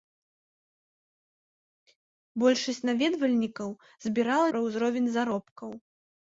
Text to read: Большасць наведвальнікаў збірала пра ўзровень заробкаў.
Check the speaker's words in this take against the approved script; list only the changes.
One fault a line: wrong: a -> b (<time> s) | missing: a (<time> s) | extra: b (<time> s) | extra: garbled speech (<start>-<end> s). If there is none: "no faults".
no faults